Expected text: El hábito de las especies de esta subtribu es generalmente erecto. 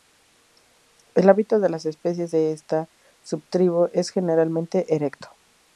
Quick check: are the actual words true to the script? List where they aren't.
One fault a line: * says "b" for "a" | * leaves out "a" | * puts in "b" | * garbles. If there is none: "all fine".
all fine